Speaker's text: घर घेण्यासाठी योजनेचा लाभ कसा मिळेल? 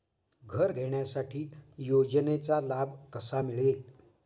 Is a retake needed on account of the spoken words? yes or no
no